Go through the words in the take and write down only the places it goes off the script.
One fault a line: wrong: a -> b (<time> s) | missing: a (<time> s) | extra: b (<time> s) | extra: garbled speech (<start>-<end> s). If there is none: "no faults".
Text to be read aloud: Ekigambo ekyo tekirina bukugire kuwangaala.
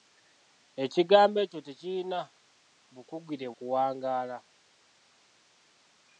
no faults